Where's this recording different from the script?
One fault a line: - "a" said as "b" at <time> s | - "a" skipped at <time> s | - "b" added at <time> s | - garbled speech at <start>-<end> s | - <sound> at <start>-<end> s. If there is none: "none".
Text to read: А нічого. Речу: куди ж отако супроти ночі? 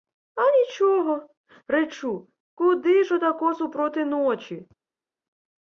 none